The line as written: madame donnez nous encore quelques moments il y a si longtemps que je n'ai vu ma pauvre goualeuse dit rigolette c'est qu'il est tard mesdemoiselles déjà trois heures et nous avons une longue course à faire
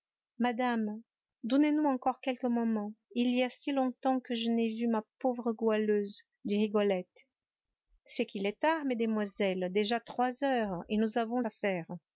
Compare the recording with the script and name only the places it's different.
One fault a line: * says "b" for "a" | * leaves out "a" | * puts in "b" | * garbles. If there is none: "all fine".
* leaves out "une longue course"